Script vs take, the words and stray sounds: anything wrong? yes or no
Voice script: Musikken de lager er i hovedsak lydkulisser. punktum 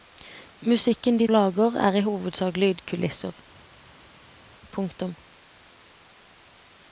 no